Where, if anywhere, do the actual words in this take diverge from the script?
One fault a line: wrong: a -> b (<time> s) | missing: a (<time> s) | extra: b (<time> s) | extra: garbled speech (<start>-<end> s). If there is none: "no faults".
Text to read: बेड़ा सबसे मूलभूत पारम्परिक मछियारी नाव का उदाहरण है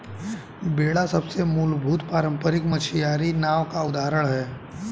no faults